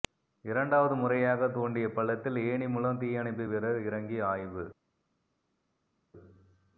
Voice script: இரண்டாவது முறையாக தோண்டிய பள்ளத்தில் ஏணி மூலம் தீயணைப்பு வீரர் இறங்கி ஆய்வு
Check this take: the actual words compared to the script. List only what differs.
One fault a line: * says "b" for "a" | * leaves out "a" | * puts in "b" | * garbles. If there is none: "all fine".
all fine